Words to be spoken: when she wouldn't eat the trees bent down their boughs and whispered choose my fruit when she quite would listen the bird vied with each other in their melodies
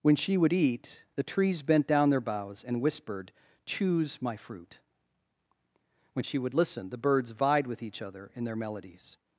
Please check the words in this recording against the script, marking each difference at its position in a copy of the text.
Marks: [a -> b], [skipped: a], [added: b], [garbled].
when she [wouldn't -> would] eat the trees bent down their boughs and whispered choose my fruit when she [skipped: quite] would listen the [bird -> birds] vied with each other in their melodies